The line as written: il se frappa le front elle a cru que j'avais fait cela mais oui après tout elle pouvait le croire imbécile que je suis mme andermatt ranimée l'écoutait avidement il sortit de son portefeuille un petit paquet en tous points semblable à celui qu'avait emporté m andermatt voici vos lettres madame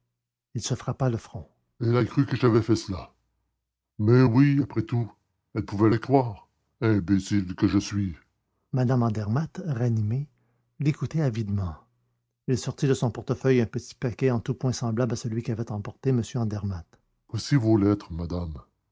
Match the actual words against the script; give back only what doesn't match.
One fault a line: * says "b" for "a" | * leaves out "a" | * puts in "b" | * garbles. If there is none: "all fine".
all fine